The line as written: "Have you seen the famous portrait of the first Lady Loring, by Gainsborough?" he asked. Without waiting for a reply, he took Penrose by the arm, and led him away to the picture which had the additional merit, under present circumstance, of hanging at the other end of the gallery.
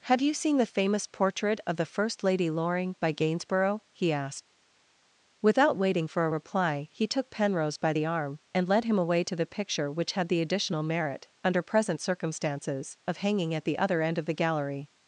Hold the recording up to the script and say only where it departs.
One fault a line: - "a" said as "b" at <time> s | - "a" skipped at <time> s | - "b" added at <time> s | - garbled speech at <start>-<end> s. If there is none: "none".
- "circumstance" said as "circumstances" at 12.0 s